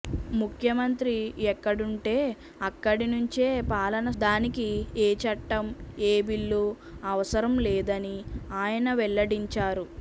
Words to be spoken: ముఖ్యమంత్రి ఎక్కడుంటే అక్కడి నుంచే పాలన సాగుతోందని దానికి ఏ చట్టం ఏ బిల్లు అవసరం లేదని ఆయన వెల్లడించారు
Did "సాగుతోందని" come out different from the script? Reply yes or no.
yes